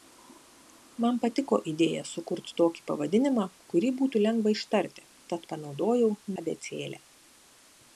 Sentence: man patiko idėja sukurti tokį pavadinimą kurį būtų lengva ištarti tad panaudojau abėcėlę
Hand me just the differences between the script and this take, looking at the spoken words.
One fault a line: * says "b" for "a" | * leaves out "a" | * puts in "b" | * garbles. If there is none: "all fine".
all fine